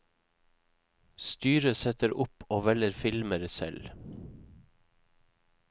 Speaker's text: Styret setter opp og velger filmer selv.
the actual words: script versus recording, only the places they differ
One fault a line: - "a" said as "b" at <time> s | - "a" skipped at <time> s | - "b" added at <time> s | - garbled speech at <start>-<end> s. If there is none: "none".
none